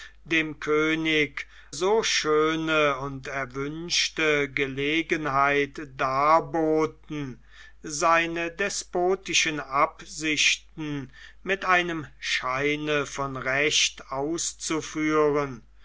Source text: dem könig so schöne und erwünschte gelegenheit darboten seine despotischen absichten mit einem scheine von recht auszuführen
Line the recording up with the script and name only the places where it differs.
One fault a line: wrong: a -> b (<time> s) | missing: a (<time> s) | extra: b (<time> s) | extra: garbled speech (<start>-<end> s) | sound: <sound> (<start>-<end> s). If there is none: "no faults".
no faults